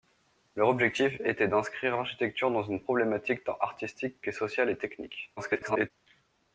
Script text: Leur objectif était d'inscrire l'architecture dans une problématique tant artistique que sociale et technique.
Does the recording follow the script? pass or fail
fail